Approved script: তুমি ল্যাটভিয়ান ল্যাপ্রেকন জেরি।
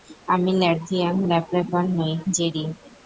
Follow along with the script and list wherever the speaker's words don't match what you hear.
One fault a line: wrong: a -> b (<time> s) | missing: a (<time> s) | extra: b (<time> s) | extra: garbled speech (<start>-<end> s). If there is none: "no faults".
wrong: তুমি -> আমি (0.3 s)
extra: নই (2.0 s)